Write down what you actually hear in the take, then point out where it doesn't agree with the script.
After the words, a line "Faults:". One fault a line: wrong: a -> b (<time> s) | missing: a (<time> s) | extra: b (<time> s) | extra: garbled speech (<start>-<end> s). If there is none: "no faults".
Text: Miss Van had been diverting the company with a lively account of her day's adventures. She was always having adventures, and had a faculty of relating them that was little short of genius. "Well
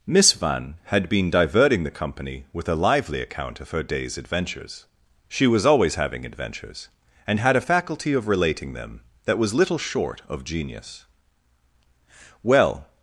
Miss Van had been diverting the company with a lively account of her day's adventures. She was always having adventures, and had a faculty of relating them that was little short of genius. "Well
Faults:
no faults